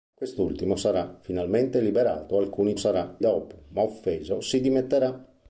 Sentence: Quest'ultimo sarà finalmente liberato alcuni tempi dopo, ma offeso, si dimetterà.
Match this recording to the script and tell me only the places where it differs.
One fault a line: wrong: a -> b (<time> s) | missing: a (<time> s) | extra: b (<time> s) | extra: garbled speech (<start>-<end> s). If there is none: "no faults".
wrong: tempi -> sarà (2.7 s)